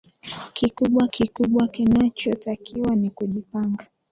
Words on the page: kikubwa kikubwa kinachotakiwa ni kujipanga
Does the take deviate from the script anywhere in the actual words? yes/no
no